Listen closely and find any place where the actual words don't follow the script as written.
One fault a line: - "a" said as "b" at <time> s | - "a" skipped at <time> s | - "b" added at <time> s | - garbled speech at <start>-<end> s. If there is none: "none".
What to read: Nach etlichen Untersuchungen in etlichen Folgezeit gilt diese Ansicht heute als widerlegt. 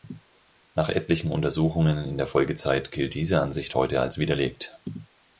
- "etlichen" said as "der" at 2.2 s